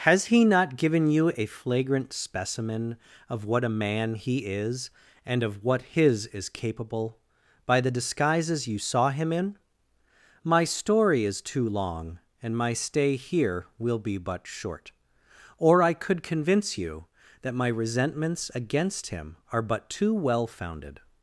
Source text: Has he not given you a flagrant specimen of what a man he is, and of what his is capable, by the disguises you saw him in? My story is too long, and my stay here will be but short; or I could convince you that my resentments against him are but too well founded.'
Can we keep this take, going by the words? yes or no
yes